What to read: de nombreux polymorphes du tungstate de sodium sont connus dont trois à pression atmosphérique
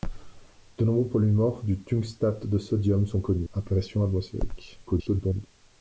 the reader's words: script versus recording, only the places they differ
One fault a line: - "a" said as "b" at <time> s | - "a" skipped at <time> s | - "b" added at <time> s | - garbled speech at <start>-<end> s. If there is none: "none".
- "dont trois" skipped at 3.5 s
- garbled speech at 4.9-5.5 s